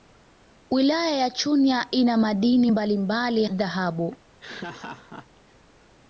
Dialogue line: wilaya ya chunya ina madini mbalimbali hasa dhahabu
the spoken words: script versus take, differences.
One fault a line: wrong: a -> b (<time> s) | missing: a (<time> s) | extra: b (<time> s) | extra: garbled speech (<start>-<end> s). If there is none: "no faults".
missing: hasa (3.4 s)